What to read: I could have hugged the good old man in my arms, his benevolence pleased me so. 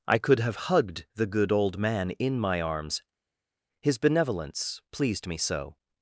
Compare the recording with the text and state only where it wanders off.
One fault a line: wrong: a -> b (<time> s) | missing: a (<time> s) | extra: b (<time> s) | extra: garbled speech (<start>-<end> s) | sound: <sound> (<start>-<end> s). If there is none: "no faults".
no faults